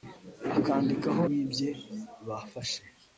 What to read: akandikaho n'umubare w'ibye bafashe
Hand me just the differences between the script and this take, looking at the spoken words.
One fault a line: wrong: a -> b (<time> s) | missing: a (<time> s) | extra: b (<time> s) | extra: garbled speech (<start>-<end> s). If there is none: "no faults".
missing: n'umubare (1.2 s)